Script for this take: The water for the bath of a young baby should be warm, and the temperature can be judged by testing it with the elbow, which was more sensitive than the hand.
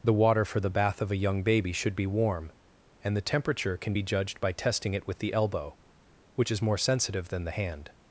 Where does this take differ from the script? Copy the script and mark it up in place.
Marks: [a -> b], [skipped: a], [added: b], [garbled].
The water for the bath of a young baby should be warm, and the temperature can be judged by testing it with the elbow, which [was -> is] more sensitive than the hand.